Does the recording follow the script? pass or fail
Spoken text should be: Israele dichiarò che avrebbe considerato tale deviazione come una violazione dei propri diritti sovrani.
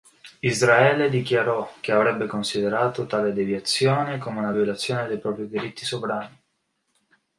pass